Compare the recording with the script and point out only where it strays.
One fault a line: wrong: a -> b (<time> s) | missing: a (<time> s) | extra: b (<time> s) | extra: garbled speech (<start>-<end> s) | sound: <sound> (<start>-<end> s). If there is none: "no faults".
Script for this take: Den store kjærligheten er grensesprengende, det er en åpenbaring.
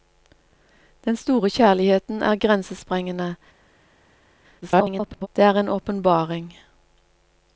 extra: garbled speech (4.6-5.3 s)